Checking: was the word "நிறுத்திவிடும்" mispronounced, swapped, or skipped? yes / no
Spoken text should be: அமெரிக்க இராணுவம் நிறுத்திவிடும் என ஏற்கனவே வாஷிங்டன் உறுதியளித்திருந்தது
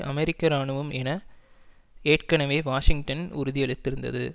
yes